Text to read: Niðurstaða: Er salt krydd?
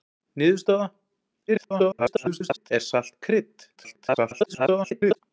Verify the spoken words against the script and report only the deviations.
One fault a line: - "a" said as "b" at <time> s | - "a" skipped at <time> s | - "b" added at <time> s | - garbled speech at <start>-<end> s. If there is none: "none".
- garbled speech at 1.5-2.7 s
- garbled speech at 3.8-5.2 s